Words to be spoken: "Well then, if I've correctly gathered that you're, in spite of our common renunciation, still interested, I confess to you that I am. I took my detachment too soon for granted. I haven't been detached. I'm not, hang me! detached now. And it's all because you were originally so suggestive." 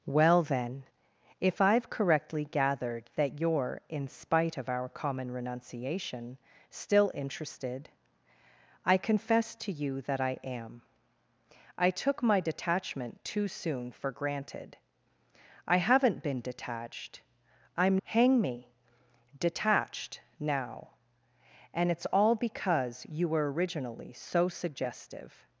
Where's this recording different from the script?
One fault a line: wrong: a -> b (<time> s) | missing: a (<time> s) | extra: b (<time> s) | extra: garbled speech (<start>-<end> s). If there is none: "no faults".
missing: not (18.0 s)